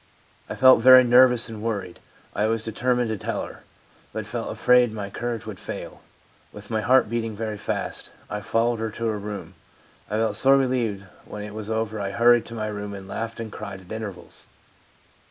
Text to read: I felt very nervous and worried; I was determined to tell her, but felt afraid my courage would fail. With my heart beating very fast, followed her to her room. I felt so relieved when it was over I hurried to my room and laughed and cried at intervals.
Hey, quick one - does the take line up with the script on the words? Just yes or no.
no